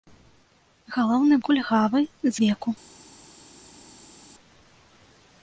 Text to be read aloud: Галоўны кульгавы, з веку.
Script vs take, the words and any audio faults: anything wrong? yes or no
no